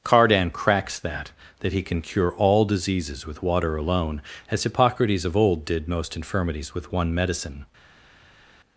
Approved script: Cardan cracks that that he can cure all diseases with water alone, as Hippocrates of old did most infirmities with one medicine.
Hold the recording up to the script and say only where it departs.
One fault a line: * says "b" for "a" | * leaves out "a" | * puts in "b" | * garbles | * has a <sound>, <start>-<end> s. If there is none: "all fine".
all fine